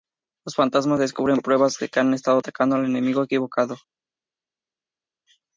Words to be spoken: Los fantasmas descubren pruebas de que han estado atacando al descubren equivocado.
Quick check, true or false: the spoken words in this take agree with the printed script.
false